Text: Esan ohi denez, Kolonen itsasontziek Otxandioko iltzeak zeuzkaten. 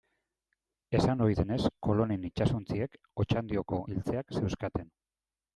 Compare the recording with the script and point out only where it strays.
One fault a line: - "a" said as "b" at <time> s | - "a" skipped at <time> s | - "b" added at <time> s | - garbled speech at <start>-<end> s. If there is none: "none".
none